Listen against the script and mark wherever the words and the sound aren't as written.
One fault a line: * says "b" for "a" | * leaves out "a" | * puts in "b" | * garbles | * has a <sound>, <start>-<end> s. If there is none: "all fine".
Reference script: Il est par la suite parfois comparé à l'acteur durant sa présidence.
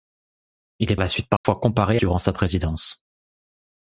* leaves out "par"
* has a dropout, 1.4-1.4 s
* leaves out "à l'acteur"